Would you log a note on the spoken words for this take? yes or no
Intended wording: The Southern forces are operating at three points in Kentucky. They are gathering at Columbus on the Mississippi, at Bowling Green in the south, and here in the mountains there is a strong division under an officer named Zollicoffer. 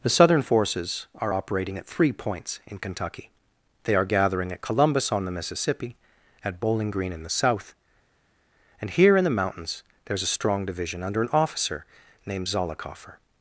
no